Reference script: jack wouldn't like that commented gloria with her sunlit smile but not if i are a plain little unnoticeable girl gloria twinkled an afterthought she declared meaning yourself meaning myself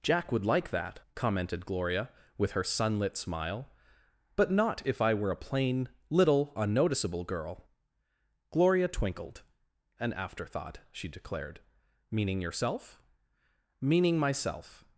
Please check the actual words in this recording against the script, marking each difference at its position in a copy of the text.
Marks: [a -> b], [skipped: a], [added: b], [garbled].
jack [wouldn't -> would] like that commented gloria with her sunlit smile but not if i [are -> were] a plain little unnoticeable girl gloria twinkled an afterthought she declared meaning yourself meaning myself